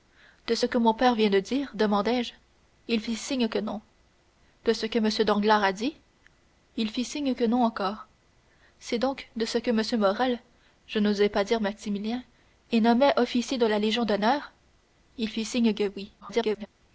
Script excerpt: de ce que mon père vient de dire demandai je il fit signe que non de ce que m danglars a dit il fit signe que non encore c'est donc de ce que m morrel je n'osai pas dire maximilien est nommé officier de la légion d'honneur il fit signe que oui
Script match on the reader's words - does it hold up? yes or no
no